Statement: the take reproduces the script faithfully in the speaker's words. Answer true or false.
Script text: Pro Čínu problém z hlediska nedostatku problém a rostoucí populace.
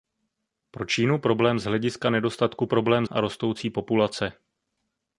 true